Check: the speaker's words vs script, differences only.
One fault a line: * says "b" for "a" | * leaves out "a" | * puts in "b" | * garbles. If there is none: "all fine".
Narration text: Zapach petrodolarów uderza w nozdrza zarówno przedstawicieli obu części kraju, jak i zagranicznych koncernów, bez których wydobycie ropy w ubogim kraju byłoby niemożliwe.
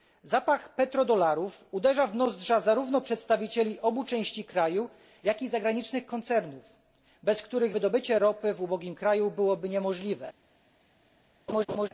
all fine